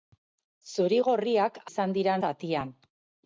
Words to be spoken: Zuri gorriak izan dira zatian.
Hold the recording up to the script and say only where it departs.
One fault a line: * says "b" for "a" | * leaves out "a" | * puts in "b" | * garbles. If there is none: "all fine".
all fine